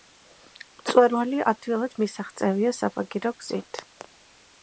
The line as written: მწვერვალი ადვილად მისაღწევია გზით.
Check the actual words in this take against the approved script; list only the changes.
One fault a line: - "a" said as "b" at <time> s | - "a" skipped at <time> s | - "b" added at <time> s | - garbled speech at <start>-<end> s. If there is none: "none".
- "საბაგირო" added at 2.8 s